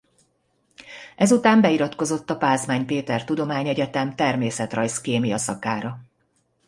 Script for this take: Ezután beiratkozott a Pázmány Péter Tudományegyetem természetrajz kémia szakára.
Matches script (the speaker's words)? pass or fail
pass